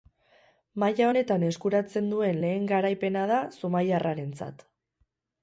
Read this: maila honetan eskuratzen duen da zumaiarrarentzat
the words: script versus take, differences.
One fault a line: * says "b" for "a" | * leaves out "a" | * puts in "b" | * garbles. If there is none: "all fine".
* puts in "lehen garaipena"